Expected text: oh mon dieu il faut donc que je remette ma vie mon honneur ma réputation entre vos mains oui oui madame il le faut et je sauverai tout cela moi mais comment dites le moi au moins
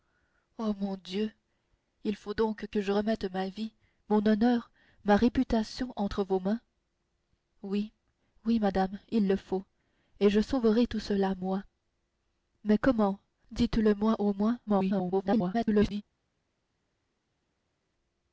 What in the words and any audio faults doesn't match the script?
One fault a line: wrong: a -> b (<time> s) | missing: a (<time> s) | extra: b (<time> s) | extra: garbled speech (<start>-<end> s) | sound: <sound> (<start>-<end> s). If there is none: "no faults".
extra: garbled speech (14.7-16.0 s)